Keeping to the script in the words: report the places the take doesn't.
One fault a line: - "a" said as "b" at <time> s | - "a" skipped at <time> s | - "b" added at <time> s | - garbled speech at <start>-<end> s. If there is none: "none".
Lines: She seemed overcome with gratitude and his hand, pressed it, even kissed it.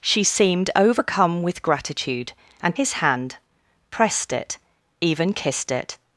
none